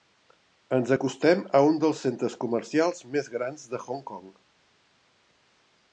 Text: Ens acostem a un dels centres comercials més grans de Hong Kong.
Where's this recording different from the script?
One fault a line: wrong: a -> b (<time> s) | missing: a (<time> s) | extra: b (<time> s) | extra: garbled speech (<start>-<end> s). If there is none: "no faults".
no faults